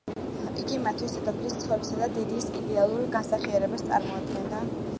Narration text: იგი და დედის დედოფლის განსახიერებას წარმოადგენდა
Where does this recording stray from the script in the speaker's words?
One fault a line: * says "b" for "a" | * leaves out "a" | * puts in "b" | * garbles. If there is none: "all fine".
* puts in "მათთვის დედოფლის ცოლისა"
* says "იდეალურ" for "დედოფლის"